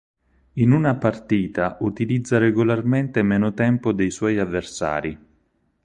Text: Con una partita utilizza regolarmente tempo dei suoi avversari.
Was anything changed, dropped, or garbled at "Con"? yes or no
yes